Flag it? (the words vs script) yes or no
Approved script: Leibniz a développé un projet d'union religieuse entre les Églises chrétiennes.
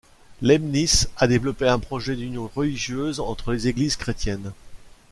no